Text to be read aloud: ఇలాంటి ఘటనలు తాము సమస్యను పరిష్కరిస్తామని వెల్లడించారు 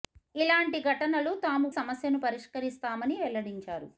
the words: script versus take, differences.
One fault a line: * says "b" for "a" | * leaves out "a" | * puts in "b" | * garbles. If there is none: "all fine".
all fine